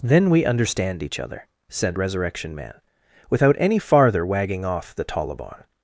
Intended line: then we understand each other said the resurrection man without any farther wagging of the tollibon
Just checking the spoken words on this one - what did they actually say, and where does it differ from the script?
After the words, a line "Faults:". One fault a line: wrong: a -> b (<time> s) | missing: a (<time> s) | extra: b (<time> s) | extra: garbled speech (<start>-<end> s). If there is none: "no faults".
then we understand each other said resurrection man without any farther wagging off the tollibon
Faults:
missing: the (2.0 s)
wrong: of -> off (4.6 s)